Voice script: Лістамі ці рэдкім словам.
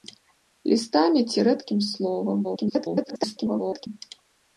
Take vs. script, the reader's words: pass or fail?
fail